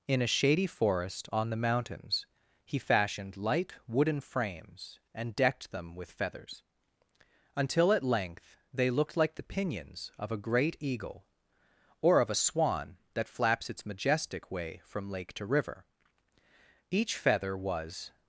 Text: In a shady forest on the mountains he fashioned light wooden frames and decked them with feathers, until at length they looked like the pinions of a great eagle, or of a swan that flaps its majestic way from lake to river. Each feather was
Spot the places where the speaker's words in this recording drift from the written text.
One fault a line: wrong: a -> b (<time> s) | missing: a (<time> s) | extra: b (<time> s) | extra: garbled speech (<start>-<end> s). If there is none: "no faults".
no faults